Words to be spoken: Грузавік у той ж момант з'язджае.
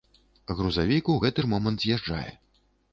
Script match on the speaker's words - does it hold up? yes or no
no